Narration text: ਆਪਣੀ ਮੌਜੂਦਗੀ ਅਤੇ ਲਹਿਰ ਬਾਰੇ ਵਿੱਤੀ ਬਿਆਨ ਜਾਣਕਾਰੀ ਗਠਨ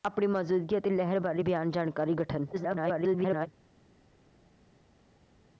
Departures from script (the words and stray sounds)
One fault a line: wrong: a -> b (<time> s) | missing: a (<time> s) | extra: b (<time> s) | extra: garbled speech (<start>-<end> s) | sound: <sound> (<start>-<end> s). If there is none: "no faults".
missing: ਵਿੱਤੀ (1.4 s)
extra: garbled speech (2.5-3.5 s)